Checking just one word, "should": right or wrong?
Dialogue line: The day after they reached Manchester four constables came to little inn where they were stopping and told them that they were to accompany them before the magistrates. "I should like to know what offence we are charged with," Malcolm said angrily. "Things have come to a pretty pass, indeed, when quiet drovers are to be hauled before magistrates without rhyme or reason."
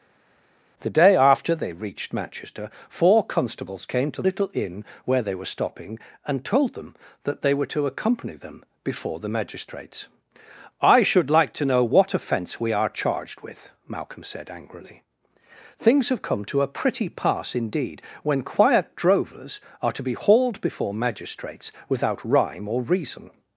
right